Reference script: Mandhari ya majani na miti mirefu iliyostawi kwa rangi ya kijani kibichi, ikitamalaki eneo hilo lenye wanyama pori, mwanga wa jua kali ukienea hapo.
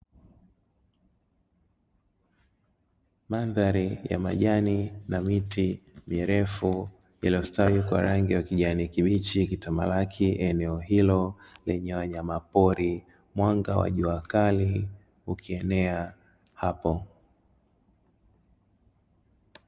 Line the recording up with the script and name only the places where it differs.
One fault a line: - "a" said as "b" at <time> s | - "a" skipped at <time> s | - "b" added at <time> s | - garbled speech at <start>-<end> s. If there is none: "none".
none